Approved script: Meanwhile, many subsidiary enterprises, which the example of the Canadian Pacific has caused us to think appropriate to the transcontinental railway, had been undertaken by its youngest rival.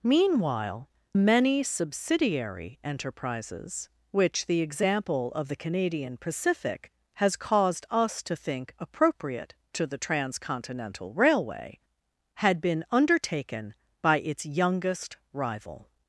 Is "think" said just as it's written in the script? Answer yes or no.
yes